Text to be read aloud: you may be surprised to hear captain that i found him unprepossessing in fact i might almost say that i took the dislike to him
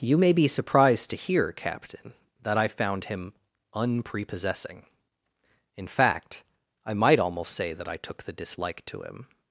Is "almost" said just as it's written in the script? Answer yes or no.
yes